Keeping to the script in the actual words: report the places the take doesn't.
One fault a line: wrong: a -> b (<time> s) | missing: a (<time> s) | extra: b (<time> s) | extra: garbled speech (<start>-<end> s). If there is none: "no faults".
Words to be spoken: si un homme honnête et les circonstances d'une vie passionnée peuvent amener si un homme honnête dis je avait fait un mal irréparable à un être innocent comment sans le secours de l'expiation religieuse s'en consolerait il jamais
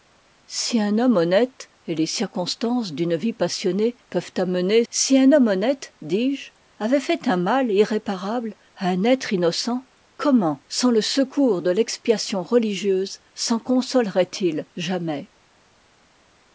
no faults